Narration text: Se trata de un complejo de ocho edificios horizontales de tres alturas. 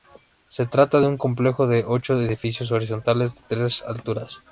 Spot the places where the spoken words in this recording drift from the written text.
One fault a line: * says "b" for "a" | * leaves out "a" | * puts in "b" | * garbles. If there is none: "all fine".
all fine